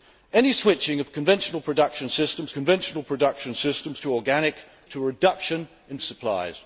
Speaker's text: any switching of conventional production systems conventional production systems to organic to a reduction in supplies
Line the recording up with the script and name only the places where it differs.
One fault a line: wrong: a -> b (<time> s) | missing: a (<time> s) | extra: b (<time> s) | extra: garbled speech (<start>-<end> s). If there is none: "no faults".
no faults